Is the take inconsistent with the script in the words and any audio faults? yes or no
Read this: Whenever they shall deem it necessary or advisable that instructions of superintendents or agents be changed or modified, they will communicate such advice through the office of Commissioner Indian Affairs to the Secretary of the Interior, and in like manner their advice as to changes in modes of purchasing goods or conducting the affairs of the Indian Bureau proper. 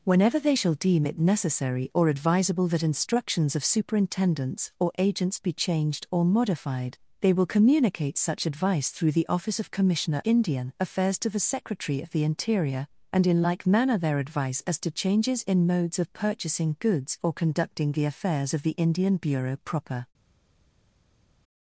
no